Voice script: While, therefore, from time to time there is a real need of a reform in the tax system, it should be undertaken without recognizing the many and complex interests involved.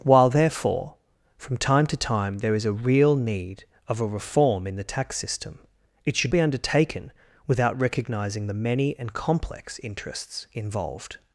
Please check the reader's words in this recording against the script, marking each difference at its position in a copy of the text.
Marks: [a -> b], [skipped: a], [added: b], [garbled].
While, therefore, from time to time there is a real need of a reform in the tax system, it should be undertaken without recognizing the many and complex interests involved.